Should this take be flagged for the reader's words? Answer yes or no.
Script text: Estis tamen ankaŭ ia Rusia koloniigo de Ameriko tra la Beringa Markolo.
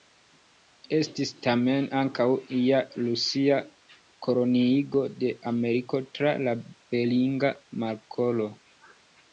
no